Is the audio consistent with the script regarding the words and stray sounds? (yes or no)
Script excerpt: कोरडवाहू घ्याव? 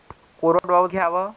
no